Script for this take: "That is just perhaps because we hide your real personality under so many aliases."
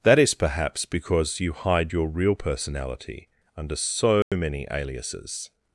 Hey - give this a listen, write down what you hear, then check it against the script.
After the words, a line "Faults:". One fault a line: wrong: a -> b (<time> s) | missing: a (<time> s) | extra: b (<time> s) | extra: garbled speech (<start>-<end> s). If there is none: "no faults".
"That is perhaps because you hide your real personality under so many aliases."
Faults:
missing: just (0.3 s)
wrong: we -> you (1.4 s)